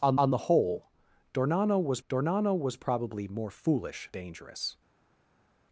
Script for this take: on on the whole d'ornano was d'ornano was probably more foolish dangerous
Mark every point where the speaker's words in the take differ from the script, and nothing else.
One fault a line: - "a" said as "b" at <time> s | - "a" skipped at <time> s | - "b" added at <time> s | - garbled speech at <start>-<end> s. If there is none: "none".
none